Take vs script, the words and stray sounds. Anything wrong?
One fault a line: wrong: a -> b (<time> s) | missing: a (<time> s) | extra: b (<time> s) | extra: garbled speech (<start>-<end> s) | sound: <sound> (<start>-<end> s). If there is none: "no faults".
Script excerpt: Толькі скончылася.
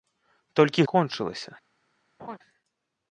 sound: laugh (2.2-2.4 s)